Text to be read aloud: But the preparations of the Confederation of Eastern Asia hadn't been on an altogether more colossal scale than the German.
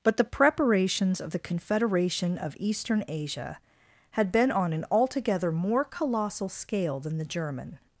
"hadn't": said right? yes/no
no